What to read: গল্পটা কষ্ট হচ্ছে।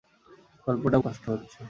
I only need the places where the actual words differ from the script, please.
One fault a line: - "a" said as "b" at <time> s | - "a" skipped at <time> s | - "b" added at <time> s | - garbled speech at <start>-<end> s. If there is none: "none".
none